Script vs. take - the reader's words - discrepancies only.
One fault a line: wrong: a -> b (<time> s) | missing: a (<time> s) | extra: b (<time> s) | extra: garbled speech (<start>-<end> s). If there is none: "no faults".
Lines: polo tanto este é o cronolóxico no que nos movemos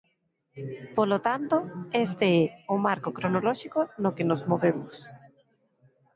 extra: marco (2.9 s)